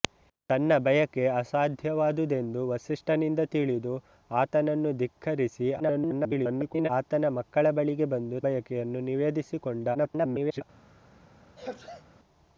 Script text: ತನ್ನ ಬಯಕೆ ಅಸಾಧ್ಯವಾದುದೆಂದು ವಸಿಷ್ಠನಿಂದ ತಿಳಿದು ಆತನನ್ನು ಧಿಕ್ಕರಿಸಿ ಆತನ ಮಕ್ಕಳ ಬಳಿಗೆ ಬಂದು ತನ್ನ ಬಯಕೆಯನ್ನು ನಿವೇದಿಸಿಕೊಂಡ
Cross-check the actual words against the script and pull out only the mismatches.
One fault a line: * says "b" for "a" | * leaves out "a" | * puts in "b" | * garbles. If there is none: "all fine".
* garbles
* leaves out "ತನ್ನ"
* garbles